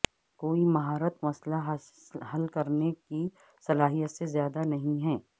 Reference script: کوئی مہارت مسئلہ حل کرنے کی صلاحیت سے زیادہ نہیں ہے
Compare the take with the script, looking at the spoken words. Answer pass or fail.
pass